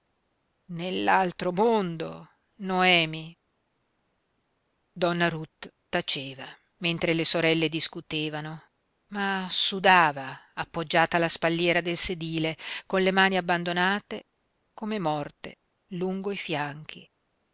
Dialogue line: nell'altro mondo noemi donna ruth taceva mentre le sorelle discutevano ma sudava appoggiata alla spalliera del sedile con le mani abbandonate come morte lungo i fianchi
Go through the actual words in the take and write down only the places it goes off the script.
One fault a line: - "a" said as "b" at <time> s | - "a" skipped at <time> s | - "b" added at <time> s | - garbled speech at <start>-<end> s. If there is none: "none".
none